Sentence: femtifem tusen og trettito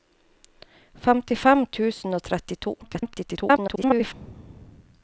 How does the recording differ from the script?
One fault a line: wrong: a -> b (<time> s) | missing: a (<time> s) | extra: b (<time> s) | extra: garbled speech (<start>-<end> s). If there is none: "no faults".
extra: garbled speech (2.8-4.1 s)